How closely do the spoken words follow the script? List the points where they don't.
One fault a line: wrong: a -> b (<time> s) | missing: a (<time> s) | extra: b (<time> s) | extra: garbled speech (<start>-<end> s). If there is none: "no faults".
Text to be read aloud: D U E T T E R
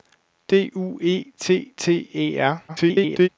extra: garbled speech (2.7-3.3 s)